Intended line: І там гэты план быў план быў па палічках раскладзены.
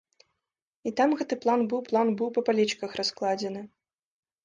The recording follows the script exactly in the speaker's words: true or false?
true